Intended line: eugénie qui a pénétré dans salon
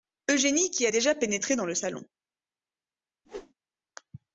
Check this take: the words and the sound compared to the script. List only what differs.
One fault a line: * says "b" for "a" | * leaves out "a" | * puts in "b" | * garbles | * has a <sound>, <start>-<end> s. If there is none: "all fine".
* puts in "déjà"
* puts in "le"
* has a whoosh, 3.2-3.5 s